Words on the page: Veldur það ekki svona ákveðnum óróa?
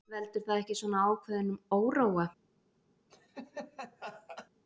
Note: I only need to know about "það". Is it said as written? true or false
true